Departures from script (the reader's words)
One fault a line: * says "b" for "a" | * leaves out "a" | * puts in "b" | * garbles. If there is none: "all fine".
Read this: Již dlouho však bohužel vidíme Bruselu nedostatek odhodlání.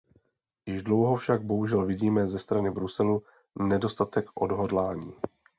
* puts in "ze strany"